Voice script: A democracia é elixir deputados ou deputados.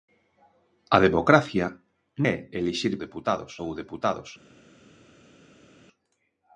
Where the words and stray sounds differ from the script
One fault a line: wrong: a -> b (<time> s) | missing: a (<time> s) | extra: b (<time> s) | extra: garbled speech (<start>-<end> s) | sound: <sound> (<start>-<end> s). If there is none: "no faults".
no faults